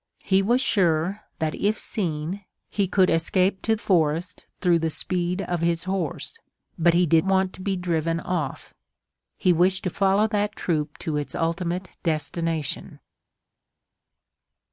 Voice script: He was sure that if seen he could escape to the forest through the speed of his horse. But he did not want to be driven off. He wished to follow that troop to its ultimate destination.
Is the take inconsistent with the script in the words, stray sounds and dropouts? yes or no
yes